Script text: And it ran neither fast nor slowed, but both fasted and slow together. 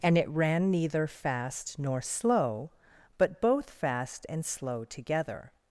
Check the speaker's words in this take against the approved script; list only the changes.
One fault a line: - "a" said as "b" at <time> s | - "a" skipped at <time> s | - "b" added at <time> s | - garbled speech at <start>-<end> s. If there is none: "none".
- "slowed" said as "slow" at 2.0 s
- "fasted" said as "fast" at 3.7 s